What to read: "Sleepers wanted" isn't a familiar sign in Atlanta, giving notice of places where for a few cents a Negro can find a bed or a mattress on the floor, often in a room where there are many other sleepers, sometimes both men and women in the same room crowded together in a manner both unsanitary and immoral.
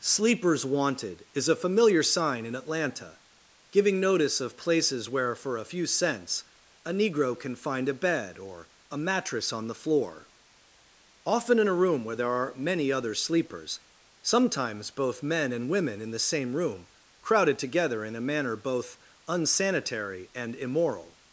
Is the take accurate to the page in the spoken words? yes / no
no